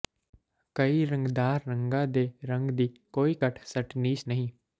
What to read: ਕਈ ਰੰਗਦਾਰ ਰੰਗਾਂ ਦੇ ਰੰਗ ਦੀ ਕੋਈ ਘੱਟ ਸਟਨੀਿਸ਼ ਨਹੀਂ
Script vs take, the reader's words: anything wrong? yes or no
no